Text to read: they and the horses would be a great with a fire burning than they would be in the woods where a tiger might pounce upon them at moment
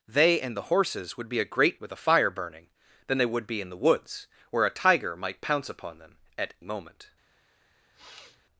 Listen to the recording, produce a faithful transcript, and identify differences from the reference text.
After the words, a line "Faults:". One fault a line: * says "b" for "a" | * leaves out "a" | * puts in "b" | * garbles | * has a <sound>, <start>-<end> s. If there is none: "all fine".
they and the horses would be a great with a fire burning than they would be in the woods where a tiger might pounce upon them at moment
Faults:
* has a sniff, 7.9-8.4 s